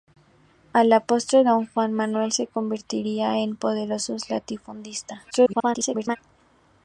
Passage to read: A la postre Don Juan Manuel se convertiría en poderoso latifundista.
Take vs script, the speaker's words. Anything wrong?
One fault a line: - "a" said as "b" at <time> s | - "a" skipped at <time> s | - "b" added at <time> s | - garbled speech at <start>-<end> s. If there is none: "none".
- garbled speech at 5.3-6.2 s